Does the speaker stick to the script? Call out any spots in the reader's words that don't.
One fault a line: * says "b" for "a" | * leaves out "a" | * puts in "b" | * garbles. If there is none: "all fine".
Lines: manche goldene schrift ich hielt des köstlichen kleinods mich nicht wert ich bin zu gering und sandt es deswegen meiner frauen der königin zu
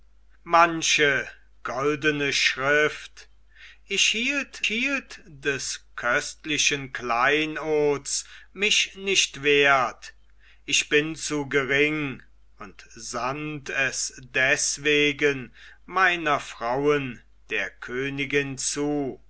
* puts in "hielt"